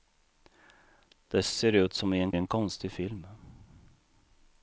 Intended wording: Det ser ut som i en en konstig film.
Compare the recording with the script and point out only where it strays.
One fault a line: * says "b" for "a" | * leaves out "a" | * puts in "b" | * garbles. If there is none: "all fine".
all fine